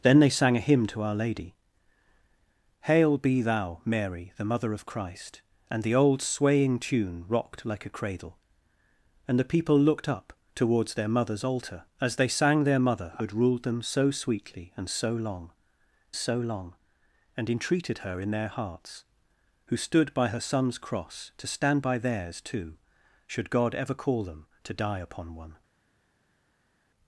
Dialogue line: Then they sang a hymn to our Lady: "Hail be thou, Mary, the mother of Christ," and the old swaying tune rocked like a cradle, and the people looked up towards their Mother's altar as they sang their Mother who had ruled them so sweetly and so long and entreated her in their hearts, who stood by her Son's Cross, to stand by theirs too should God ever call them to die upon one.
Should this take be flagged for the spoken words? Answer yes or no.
yes